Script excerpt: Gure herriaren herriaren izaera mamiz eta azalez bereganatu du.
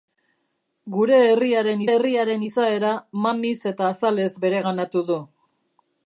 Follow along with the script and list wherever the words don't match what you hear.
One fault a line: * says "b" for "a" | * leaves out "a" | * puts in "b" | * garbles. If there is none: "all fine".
all fine